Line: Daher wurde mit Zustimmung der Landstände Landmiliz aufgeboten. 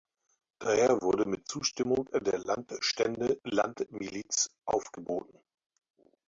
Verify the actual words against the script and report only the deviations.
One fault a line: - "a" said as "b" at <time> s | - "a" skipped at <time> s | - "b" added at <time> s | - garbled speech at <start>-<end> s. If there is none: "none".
none